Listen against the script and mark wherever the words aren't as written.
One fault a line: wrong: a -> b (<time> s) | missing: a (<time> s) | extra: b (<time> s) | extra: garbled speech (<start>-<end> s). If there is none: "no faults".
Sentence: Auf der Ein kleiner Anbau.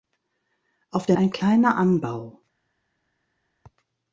no faults